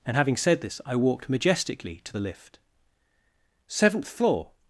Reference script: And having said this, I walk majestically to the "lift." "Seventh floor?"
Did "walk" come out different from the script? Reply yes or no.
yes